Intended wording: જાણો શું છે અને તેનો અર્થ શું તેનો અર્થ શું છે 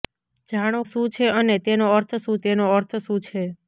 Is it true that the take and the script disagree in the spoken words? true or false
false